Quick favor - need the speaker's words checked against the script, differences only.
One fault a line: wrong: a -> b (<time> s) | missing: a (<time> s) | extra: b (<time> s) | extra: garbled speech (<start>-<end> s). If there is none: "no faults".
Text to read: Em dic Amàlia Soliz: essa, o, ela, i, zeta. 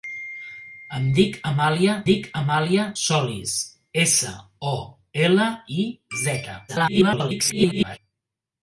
extra: dic Amàlia (2.1 s)
extra: garbled speech (6.7-8.0 s)